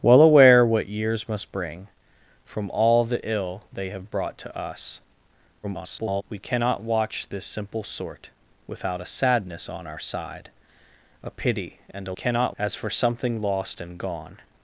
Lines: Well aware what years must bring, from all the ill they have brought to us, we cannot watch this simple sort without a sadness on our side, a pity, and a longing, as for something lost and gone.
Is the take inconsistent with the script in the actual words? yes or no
yes